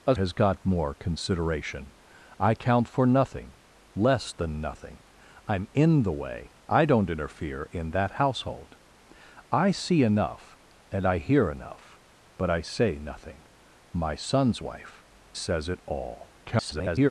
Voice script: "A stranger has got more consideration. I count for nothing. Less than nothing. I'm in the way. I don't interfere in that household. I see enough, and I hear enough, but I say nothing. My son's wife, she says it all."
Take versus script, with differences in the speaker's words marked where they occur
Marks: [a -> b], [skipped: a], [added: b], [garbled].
"A [skipped: stranger] has got more consideration. I count for nothing. Less than nothing. I'm in the way. I don't interfere in that household. I see enough, and I hear enough, but I say nothing. My son's wife, [skipped: she] says it all." [garbled]